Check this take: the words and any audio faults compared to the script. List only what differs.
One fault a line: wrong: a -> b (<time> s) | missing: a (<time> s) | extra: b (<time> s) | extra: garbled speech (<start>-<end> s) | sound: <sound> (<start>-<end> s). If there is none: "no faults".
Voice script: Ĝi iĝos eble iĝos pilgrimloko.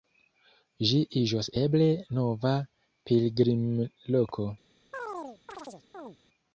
wrong: iĝos -> nova (2.2 s)
sound: chirp (4.9-6.2 s)